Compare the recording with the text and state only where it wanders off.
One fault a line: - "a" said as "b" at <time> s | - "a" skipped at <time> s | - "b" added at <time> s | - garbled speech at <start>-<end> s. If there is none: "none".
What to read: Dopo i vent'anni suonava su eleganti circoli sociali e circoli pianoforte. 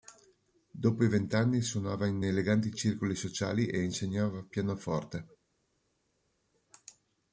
- "su" said as "in" at 2.1 s
- "circoli" said as "insegnava" at 3.8 s